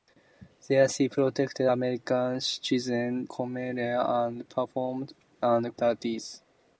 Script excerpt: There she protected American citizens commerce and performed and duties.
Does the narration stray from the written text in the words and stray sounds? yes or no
no